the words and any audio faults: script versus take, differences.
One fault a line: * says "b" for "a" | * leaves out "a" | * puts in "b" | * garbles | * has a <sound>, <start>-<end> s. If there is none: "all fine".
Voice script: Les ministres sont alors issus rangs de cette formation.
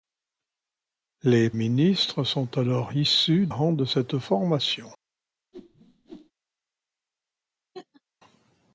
* has a whoosh, 5.5-6.3 s
* has a laugh, 7.7-8.0 s